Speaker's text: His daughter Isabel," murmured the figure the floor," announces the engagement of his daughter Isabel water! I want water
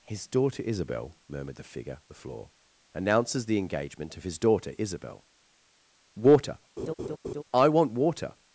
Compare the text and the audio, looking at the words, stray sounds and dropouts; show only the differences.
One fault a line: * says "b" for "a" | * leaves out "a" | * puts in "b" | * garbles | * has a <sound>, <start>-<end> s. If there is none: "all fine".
* has a laugh, 6.8-7.4 s